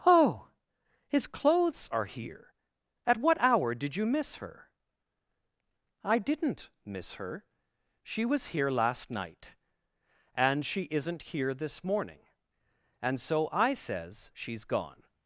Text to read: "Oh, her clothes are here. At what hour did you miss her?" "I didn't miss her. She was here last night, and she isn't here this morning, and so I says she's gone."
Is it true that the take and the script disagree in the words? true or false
true